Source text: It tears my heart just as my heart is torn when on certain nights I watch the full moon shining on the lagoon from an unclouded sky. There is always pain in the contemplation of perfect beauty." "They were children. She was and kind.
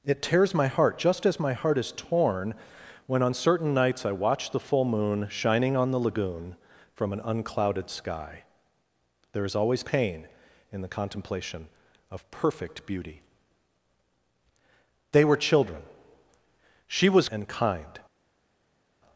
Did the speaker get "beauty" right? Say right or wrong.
right